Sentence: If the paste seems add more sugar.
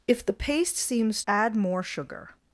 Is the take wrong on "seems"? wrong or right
right